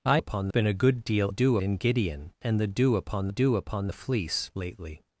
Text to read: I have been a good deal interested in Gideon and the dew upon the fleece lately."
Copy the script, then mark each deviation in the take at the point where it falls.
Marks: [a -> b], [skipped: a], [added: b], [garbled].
I [have -> upon] been a good deal [interested -> dew] in Gideon and the dew upon [added: dew upon] the fleece lately."